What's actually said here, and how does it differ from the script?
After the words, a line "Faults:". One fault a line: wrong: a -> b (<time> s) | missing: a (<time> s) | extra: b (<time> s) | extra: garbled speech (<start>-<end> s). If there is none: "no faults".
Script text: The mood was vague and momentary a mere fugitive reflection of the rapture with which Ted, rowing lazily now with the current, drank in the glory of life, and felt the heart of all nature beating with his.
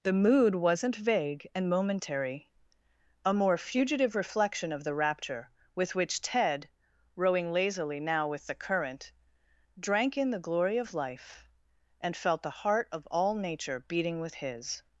The mood wasn't vague and momentary a more fugitive reflection of the rapture with which Ted, rowing lazily now with the current, drank in the glory of life, and felt the heart of all nature beating with his.
Faults:
wrong: was -> wasn't (0.6 s)
wrong: mere -> more (3.4 s)